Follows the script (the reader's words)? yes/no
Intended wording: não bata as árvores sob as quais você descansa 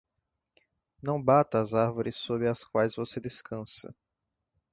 yes